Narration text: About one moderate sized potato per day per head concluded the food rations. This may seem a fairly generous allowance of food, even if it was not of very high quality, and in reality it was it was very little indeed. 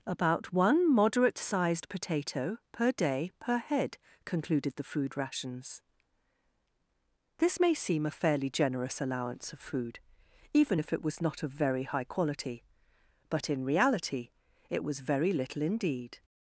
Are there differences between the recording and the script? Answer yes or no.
yes